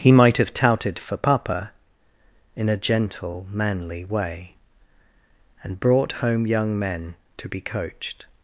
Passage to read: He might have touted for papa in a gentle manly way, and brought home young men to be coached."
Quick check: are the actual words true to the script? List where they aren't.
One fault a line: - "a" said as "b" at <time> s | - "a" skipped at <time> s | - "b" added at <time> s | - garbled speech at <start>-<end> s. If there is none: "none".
none